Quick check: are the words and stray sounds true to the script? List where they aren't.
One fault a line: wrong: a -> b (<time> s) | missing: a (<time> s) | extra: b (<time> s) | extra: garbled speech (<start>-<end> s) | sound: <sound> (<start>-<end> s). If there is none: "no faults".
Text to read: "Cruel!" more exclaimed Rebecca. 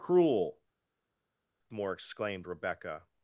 no faults